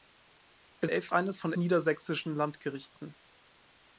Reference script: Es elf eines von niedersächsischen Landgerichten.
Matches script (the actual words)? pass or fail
pass